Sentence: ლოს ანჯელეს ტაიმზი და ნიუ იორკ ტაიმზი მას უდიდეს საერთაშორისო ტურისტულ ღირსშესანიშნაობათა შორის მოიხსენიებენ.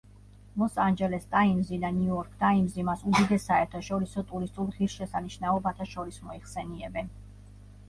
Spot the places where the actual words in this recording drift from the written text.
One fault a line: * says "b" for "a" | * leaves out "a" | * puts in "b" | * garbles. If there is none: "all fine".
all fine